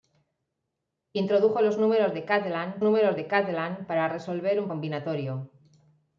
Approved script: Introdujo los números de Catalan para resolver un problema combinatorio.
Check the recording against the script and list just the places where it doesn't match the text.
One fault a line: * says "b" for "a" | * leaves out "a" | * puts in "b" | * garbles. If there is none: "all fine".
* puts in "números de Catalan"
* leaves out "problema"